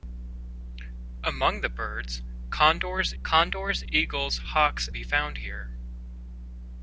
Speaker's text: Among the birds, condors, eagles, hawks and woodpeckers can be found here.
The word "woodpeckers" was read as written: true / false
false